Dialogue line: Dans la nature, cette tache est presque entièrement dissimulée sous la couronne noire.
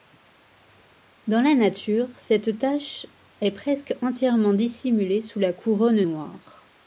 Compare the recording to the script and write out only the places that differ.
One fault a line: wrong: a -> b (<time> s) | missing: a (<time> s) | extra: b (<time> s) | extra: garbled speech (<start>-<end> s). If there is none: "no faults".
no faults